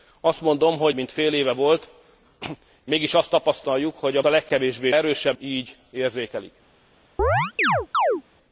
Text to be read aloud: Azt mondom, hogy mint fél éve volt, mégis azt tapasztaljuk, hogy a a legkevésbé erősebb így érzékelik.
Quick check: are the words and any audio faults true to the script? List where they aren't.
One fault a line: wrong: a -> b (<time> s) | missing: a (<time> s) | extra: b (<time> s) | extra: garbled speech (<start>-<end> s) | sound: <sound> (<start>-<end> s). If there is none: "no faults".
sound: chirp (7.2-8.2 s)